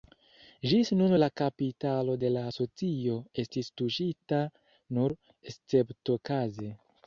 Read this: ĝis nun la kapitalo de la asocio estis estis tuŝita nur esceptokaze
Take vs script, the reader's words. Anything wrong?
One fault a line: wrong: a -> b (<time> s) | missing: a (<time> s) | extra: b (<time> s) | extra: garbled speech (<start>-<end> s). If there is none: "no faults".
missing: estis (3.7 s)